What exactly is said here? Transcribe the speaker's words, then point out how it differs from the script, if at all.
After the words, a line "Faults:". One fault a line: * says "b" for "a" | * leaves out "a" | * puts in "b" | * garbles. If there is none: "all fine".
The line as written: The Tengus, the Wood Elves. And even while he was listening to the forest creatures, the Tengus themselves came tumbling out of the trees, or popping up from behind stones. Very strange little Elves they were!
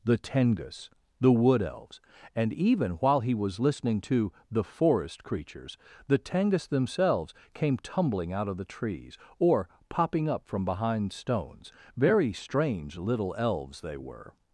The Tengus, the Wood Elves. And even while he was listening to the forest creatures, the Tengus themselves came tumbling out of the trees, or popping up from behind stones. Very strange little Elves they were!
Faults:
all fine